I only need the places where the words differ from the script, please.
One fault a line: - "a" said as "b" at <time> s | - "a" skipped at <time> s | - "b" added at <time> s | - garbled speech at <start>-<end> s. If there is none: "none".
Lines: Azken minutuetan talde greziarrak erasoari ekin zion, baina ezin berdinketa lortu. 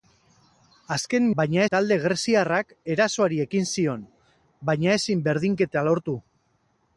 - "minutuetan" said as "baina" at 1.4 s